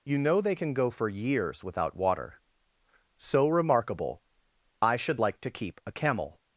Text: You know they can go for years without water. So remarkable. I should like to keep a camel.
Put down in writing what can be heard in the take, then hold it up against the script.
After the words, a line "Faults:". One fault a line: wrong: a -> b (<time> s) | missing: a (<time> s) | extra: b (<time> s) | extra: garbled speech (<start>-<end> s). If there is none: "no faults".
You know they can go for years without water. So remarkable. I should like to keep a camel.
Faults:
no faults